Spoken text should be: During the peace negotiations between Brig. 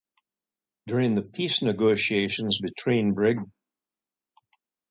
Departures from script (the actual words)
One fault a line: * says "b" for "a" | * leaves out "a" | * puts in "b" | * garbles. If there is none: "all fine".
all fine